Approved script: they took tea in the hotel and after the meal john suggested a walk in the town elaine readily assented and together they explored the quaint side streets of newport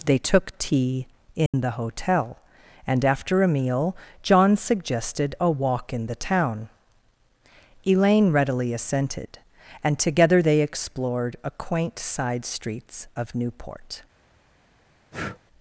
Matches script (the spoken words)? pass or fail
fail